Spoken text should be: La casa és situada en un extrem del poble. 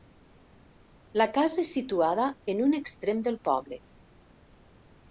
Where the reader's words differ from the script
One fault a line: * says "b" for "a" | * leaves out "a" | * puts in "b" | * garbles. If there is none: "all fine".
all fine